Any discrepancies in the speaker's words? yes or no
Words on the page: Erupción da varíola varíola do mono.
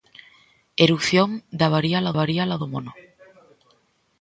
no